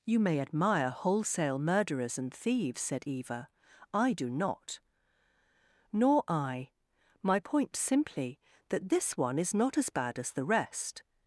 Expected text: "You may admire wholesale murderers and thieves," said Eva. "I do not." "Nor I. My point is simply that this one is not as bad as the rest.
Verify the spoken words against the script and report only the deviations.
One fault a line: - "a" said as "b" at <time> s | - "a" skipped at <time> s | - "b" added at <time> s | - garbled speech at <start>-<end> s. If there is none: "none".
- "is" skipped at 7.8 s